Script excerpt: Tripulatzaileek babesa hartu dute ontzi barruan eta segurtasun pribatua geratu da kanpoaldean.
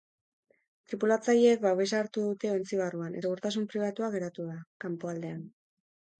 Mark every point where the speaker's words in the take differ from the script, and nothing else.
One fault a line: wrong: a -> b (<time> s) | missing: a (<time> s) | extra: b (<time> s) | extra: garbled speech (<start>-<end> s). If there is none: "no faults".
missing: eta (3.2 s)